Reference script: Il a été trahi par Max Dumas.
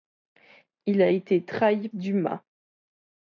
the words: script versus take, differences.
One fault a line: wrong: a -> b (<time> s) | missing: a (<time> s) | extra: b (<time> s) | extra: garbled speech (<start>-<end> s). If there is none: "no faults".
missing: par Max (1.9 s)